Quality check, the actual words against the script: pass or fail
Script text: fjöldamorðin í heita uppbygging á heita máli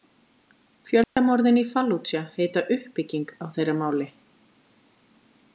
fail